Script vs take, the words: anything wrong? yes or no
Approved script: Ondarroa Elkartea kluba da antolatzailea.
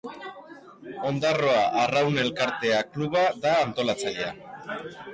yes